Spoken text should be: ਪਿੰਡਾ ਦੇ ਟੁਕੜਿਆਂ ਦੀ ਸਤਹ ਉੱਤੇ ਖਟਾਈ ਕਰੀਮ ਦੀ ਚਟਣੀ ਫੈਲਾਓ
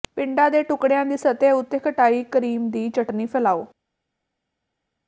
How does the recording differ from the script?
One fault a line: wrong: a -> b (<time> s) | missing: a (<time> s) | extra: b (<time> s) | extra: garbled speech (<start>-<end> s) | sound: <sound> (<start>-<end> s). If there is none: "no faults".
no faults